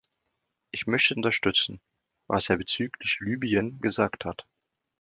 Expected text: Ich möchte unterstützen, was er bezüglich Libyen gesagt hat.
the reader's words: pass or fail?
pass